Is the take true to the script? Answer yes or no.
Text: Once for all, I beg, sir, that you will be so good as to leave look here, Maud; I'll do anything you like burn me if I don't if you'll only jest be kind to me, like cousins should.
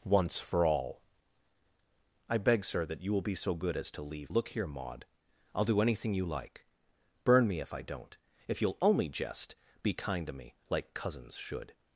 yes